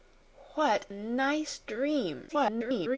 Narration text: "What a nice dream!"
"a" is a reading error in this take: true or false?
true